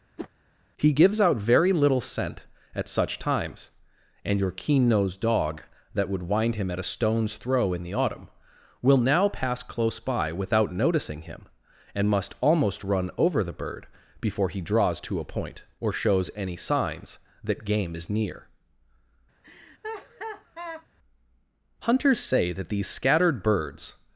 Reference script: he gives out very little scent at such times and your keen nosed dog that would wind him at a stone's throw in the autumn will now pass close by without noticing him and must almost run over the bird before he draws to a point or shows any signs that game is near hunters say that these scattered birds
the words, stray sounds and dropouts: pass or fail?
fail